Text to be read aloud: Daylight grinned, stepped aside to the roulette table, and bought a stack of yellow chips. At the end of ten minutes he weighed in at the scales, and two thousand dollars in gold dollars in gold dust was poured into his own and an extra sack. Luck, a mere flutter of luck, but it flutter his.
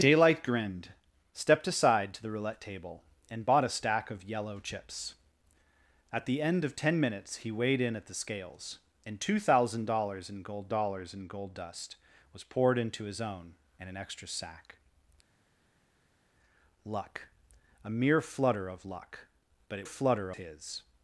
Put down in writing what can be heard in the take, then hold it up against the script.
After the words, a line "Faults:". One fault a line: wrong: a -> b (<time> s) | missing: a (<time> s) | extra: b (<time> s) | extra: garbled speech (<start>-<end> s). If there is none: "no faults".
Daylight grinned, stepped aside to the roulette table, and bought a stack of yellow chips. At the end of ten minutes he weighed in at the scales, and two thousand dollars in gold dollars in gold dust was poured into his own and an extra sack. Luck, a mere flutter of luck, but it flutter his.
Faults:
no faults